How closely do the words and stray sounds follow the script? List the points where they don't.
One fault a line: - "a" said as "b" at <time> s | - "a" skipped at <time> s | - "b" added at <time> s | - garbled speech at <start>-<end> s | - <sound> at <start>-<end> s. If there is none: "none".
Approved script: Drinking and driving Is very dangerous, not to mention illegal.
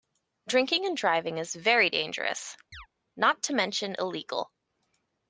- chirp at 2.7-2.9 s